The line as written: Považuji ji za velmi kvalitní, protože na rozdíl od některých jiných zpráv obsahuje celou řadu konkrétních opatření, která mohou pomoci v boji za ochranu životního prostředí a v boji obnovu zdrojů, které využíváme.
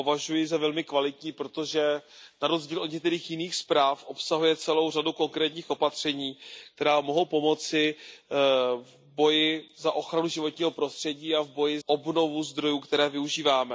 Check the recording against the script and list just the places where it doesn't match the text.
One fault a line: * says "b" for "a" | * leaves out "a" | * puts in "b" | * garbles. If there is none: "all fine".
all fine